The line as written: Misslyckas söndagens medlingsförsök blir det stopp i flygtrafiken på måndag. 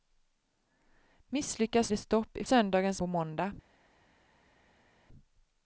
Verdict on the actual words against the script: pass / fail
fail